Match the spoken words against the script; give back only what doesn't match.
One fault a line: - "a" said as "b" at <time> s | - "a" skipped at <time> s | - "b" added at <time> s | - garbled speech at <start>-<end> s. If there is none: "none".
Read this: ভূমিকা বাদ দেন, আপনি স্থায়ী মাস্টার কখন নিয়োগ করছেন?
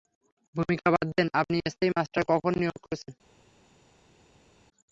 none